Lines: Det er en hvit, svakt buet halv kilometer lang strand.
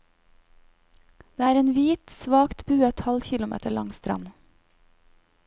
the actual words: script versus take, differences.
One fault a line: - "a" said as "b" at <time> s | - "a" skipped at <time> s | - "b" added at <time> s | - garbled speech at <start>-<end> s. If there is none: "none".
none